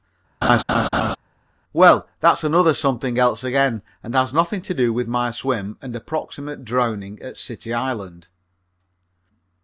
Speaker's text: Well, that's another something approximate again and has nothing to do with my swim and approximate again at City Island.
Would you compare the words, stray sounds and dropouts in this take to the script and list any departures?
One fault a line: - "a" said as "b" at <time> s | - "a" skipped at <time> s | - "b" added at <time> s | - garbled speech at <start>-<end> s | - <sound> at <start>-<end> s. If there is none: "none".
- laugh at 0.4-1.2 s
- "approximate" said as "else" at 3.2 s
- "again" said as "drowning" at 6.6 s